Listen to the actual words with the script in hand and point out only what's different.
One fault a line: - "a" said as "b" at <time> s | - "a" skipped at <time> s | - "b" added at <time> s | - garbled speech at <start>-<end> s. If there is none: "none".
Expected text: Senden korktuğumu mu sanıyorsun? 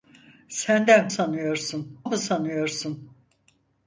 - "korktuğumu" said as "sanıyorsun" at 1.1 s